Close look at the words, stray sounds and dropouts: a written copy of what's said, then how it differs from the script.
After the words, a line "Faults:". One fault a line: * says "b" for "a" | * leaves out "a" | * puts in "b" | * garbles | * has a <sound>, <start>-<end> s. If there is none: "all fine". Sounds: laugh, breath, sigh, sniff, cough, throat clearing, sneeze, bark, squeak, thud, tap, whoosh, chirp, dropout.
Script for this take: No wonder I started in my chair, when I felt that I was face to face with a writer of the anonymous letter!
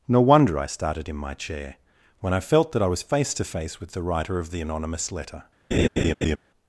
No wonder I started in my chair, when I felt that I was face to face with the writer of the anonymous letter!
Faults:
* says "the" for "a"
* has a laugh, 5.7-6.4 s